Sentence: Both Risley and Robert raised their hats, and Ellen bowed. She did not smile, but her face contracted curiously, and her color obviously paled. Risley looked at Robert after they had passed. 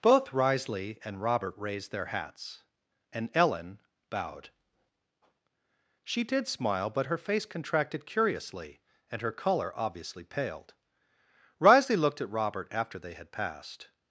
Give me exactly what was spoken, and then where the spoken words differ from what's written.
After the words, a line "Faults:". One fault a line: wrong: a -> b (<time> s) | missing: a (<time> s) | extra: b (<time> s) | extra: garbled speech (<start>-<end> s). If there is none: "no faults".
Both Risley and Robert raised their hats, and Ellen bowed. She did smile, but her face contracted curiously, and her color obviously paled. Risley looked at Robert after they had passed.
Faults:
missing: not (6.5 s)